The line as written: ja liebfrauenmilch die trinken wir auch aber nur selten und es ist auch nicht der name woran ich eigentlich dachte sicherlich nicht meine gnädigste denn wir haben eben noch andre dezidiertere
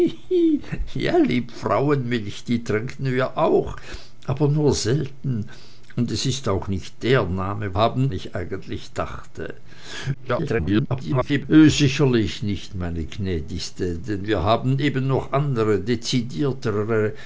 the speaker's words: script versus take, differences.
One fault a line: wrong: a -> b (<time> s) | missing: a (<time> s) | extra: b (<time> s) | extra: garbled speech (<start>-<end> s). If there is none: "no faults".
wrong: woran -> haben (7.7 s)
extra: garbled speech (10.1-11.4 s)